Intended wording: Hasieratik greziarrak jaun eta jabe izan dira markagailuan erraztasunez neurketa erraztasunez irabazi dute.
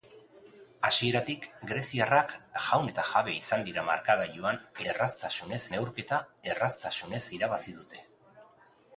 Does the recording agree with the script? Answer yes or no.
yes